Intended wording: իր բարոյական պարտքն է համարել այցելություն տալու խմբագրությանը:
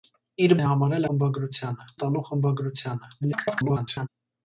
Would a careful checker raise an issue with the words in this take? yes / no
yes